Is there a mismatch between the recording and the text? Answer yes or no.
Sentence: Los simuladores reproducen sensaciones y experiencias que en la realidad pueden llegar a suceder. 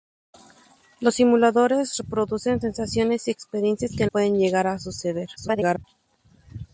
yes